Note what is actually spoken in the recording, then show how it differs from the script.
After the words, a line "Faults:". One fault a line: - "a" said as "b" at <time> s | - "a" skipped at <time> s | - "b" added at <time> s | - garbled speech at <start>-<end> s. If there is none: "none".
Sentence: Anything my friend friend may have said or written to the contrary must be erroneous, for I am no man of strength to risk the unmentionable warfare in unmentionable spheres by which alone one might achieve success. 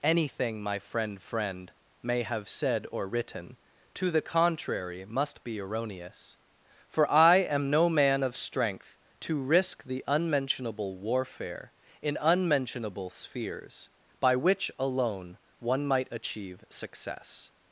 Anything my friend friend may have said or written to the contrary must be erroneous, for I am no man of strength to risk the unmentionable warfare in unmentionable spheres by which alone one might achieve success.
Faults:
none